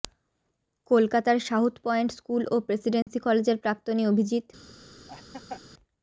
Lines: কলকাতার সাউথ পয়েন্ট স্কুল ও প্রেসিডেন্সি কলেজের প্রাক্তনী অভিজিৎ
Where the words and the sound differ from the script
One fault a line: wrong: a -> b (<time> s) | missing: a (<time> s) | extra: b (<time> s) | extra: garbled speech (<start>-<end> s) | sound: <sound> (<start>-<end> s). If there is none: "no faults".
sound: dropout (3.0-3.1 s)
sound: laugh (5.1-5.6 s)